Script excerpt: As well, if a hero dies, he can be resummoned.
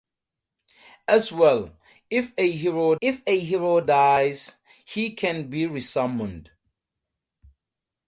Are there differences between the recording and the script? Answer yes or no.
yes